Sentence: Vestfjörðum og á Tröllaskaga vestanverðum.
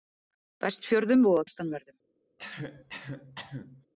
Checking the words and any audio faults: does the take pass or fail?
fail